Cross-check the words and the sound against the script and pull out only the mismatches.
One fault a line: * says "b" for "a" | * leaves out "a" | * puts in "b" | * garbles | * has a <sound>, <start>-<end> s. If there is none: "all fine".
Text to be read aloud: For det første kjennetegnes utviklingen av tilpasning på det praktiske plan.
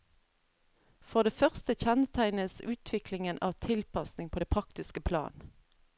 all fine